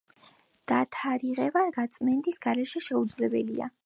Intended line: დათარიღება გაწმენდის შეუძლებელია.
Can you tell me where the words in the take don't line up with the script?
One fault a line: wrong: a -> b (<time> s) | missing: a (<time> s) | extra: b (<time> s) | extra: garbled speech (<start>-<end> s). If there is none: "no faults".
extra: გარეშე (2.5 s)